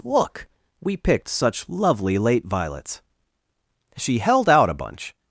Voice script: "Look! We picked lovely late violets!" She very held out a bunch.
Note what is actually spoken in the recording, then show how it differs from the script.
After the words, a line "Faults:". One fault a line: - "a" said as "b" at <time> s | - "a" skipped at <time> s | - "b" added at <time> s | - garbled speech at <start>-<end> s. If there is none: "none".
"Look! We picked such lovely late violets!" She held out a bunch.
Faults:
- "such" added at 1.3 s
- "very" skipped at 4.2 s